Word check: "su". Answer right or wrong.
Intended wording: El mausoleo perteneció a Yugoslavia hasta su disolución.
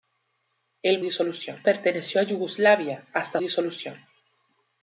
wrong